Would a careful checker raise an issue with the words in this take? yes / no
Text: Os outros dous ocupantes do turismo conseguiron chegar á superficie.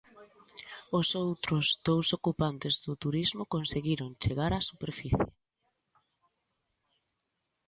no